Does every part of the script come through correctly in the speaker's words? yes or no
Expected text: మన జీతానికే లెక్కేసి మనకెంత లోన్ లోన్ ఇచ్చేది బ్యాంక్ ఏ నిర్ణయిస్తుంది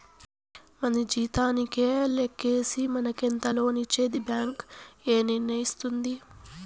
no